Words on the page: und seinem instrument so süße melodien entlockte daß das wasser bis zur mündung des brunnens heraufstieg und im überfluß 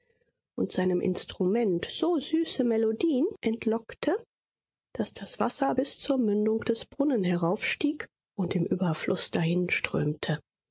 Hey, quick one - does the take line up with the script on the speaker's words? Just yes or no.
yes